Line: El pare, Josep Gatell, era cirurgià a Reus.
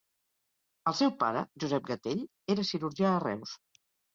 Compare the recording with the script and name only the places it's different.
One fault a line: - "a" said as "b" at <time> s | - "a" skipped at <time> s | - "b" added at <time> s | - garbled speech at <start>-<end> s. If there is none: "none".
- "seu" added at 1.0 s